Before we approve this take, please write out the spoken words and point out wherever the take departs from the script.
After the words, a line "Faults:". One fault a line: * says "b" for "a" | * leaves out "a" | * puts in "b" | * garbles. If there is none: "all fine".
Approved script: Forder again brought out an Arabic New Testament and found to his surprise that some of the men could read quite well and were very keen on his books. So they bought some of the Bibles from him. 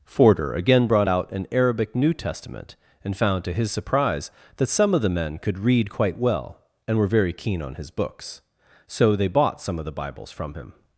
Forder again brought out an Arabic New Testament and found to his surprise that some of the men could read quite well and were very keen on his books. So they bought some of the Bibles from him.
Faults:
all fine